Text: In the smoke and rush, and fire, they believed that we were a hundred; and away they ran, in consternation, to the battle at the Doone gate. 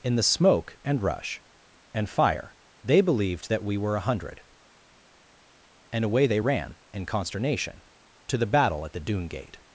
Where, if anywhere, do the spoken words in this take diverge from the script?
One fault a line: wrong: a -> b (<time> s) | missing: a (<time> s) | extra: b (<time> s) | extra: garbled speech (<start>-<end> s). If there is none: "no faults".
no faults